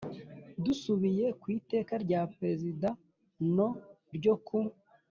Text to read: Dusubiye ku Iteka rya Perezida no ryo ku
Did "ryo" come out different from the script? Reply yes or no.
no